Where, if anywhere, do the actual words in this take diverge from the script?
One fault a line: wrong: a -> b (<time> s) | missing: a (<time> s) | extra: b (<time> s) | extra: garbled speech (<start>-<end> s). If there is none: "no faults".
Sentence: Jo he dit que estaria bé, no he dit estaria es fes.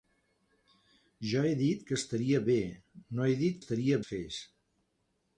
no faults